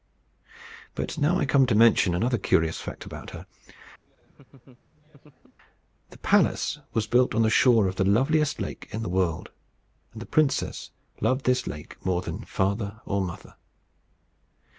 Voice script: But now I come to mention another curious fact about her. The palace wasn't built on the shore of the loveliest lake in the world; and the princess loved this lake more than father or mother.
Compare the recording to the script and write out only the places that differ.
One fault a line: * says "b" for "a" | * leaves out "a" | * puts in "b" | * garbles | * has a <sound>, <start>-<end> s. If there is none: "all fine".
* has a laugh, 4.0-5.6 s
* says "was" for "wasn't"